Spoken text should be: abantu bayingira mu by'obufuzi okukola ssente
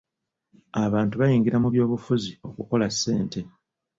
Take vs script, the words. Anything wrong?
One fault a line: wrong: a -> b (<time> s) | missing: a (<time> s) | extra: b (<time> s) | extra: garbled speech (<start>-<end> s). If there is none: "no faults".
no faults